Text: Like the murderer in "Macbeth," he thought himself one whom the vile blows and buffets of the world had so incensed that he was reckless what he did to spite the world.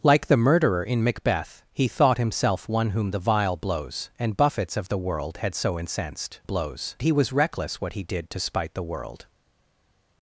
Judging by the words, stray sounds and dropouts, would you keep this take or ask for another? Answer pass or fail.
fail